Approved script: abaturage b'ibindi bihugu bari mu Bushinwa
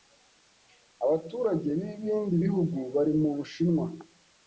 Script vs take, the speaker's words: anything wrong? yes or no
no